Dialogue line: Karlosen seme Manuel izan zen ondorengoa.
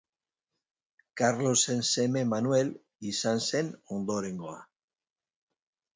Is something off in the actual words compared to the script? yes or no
no